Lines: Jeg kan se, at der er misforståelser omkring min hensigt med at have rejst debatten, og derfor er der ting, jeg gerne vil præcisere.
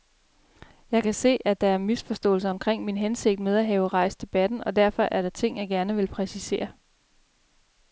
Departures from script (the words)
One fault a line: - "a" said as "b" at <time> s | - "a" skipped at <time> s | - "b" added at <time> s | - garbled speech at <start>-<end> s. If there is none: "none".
none